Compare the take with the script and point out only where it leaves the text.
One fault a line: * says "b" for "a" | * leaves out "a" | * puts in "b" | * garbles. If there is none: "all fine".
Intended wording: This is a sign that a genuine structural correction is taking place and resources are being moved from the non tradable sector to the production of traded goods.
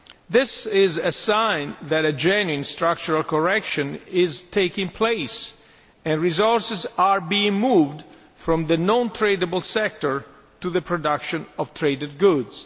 all fine